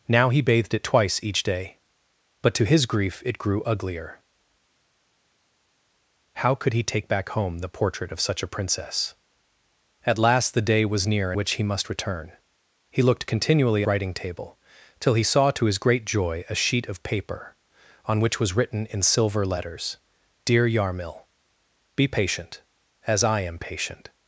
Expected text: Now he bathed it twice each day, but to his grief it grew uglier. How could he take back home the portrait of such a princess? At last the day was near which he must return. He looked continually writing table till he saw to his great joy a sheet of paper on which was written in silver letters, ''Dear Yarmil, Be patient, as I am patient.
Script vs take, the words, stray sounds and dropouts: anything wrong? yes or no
no